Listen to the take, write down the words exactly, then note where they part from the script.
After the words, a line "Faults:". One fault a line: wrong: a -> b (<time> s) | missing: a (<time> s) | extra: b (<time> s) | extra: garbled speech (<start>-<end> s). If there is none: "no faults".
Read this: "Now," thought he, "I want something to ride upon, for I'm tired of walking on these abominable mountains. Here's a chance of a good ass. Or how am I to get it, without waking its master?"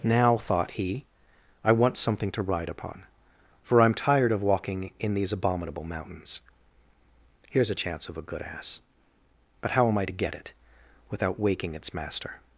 "Now," thought he, "I want something to ride upon, for I'm tired of walking in these abominable mountains. Here's a chance of a good ass. But how am I to get it, without waking its master?"
Faults:
wrong: on -> in (5.0 s)
wrong: Or -> But (9.6 s)